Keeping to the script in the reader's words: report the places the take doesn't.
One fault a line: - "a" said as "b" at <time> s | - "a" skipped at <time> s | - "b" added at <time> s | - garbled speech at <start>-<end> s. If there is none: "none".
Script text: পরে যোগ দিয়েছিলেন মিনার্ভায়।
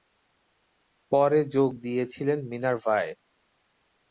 none